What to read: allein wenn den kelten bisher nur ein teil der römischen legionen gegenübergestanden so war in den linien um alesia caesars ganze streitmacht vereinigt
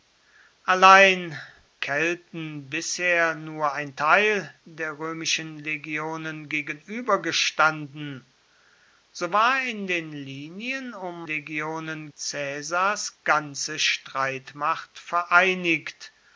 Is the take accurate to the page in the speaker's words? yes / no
no